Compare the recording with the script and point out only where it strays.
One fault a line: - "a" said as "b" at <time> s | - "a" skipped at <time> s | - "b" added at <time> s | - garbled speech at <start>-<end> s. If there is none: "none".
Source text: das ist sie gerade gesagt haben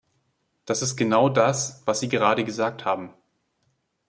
- "genau das was" added at 0.9 s